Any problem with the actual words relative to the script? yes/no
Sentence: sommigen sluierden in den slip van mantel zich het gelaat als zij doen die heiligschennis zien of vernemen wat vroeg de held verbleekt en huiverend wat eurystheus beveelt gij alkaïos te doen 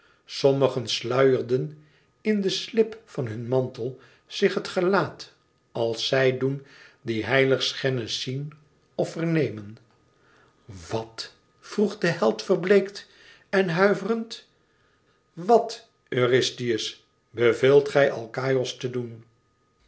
yes